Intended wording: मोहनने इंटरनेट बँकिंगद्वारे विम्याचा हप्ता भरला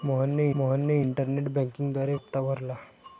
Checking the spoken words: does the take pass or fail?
fail